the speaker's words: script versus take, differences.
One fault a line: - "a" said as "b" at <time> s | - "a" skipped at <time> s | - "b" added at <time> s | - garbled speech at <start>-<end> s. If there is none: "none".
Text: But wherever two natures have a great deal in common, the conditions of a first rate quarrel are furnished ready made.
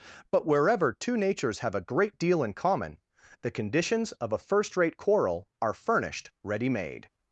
none